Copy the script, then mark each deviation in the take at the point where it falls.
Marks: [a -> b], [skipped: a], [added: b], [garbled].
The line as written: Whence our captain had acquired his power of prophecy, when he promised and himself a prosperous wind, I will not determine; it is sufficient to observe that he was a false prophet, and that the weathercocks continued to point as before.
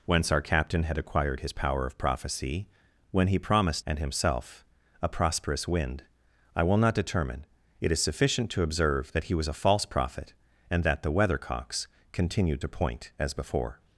Whence our captain had acquired his power of prophecy, when he promised and himself a prosperous wind, I will not determine; it is sufficient to observe that he was a false prophet, and that the weathercocks continued to point as before.